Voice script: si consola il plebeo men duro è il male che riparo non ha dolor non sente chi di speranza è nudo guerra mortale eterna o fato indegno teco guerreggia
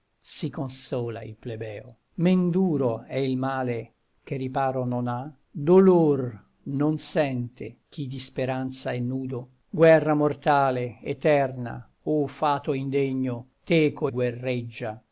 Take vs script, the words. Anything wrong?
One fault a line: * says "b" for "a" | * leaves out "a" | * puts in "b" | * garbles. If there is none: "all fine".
all fine